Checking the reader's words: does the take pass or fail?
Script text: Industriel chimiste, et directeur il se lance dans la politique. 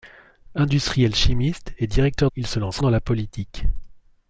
pass